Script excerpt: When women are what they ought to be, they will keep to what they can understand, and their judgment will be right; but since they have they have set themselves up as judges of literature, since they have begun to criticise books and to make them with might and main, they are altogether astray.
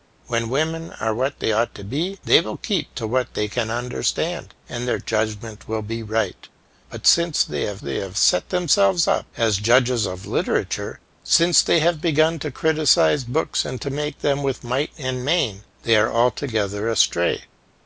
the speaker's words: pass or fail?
pass